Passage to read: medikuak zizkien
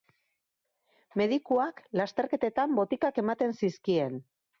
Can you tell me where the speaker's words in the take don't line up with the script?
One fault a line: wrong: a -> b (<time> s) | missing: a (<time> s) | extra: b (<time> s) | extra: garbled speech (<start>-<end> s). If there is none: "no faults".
extra: lasterketetan botikak ematen (2.0 s)